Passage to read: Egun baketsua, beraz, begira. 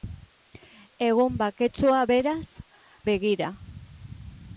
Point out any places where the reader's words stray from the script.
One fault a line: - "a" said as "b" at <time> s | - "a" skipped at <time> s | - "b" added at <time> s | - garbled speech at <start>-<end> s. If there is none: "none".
none